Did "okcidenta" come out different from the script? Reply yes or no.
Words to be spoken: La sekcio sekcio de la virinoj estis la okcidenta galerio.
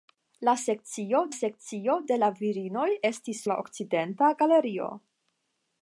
no